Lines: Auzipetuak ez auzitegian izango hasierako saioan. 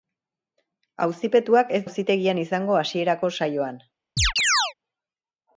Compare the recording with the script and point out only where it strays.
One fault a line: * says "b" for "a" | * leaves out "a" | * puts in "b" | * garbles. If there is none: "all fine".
all fine